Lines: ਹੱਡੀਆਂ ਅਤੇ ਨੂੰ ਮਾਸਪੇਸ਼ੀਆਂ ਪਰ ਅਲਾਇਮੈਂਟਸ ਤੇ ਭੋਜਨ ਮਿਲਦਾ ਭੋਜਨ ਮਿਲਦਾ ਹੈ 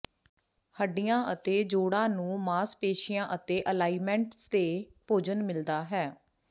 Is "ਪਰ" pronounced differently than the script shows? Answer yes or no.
yes